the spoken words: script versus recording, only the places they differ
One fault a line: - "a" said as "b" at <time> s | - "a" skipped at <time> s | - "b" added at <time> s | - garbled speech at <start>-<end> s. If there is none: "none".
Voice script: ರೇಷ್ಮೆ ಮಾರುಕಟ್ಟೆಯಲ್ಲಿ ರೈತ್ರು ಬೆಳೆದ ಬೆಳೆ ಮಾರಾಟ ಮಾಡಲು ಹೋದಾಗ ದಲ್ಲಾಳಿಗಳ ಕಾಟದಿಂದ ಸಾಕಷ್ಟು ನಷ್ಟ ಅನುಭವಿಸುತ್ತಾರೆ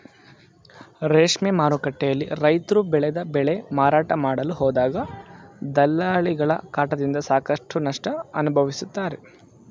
none